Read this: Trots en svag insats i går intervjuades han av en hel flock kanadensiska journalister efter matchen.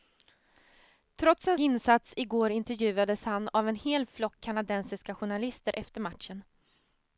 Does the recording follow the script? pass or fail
fail